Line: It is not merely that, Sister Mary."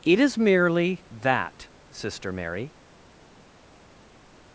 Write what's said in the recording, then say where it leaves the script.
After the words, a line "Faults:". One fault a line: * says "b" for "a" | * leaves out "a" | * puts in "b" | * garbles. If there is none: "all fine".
It is merely that, Sister Mary."
Faults:
* leaves out "not"